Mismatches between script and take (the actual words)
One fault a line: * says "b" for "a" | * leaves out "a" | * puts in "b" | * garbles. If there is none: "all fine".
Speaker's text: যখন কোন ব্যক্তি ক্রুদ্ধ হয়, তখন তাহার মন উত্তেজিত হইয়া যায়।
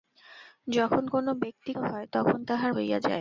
* leaves out "ক্রুদ্ধ"
* leaves out "মন উত্তেজিত"